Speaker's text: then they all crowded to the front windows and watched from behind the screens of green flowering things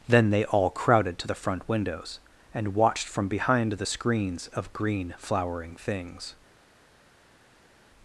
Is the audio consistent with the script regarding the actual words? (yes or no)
yes